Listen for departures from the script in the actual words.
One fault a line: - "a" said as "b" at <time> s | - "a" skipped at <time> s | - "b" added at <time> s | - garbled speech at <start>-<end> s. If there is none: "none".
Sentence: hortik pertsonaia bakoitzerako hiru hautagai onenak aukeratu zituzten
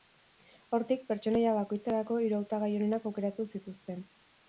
none